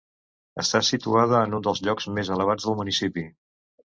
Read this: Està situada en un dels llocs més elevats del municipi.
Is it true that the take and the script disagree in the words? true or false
false